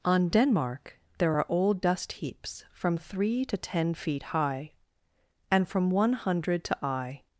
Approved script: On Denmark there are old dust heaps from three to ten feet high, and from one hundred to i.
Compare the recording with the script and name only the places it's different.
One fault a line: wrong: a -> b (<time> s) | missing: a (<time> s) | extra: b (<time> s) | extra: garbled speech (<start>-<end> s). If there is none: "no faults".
no faults